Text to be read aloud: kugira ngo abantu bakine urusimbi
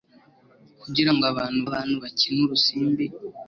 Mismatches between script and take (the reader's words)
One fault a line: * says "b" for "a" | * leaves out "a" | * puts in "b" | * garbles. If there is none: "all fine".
* puts in "abantu"